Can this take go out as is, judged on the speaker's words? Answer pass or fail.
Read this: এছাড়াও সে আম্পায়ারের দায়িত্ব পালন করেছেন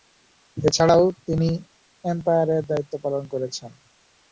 fail